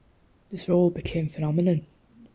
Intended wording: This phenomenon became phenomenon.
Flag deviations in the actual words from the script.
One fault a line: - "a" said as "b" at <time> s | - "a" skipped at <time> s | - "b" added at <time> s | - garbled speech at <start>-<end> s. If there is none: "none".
- "phenomenon" said as "role" at 0.7 s